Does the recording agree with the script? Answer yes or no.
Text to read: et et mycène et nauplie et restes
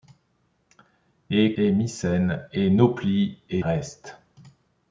yes